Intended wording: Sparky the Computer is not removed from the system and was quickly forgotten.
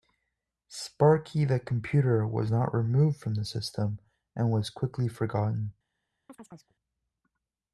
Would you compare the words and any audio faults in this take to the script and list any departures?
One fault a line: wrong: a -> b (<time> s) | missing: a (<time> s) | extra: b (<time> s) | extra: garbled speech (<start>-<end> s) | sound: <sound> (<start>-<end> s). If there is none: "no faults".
wrong: is -> was (2.2 s)
sound: chirp (6.3-6.8 s)